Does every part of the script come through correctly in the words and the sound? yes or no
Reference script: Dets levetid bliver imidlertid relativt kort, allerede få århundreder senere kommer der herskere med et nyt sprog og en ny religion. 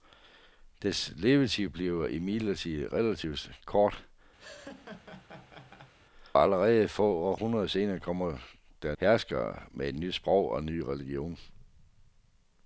no